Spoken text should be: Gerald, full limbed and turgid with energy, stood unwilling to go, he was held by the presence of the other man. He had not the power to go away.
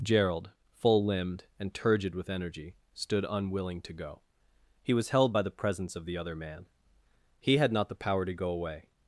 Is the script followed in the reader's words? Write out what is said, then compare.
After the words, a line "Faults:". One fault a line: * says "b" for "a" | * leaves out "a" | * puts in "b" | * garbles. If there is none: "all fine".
Gerald, full limbed and turgid with energy, stood unwilling to go, he was held by the presence of the other man. He had not the power to go away.
Faults:
all fine